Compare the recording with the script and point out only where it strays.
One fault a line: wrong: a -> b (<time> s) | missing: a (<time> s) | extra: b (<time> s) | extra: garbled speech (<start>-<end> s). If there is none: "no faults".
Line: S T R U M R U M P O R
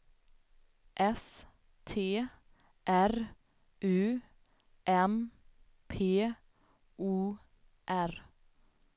missing: R U M (5.3 s)